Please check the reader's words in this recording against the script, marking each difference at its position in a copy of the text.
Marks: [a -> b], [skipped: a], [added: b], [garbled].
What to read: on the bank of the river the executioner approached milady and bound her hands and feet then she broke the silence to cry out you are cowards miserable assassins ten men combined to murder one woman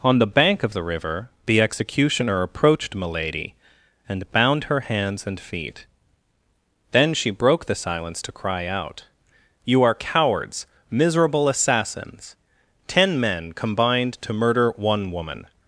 on the bank of the river the executioner approached milady and bound her hands and feet then she broke the silence to cry out you are cowards miserable assassins ten men combined to murder one woman